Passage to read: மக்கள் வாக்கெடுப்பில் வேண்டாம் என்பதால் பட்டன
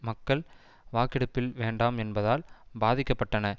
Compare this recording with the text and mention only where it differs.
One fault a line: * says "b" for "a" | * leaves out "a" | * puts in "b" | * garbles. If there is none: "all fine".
* puts in "பாதிக்க"